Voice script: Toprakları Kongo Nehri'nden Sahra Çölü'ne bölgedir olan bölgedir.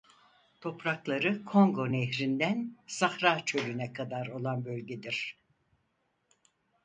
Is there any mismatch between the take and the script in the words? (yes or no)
yes